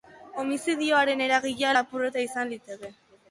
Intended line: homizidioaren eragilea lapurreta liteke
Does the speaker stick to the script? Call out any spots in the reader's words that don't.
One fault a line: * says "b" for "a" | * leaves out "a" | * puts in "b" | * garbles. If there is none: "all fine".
* puts in "izan"